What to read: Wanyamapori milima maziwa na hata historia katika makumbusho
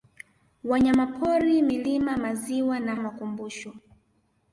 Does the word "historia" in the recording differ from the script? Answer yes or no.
yes